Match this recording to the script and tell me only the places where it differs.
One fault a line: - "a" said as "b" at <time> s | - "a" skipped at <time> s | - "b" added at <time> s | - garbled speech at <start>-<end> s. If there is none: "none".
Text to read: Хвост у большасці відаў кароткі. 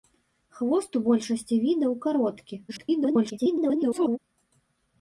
- garbled speech at 2.7-4.2 s